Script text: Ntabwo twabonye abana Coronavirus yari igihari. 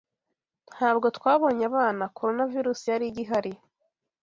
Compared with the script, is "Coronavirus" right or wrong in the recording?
right